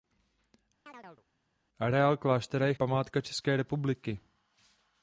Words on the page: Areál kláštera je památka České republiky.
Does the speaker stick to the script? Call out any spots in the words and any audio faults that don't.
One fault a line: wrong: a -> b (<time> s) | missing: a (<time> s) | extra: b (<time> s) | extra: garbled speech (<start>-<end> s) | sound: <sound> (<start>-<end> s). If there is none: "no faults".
sound: chirp (0.9-1.3 s)